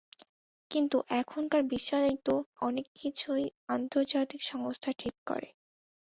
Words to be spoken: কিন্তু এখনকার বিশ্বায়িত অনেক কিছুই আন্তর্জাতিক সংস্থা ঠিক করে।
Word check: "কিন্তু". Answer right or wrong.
right